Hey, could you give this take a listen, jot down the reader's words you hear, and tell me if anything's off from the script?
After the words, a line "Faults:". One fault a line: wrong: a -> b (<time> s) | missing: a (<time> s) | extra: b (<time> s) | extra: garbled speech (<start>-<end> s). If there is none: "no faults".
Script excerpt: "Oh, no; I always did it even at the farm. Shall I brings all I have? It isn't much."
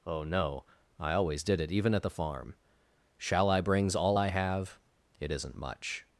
"Oh, no; I always did it even at the farm. Shall I brings all I have? It isn't much."
Faults:
no faults